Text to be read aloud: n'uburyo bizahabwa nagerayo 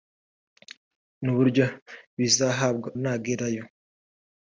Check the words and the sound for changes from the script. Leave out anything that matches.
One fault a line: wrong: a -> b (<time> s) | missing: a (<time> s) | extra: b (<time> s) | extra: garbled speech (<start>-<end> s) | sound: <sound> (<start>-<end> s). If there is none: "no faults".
no faults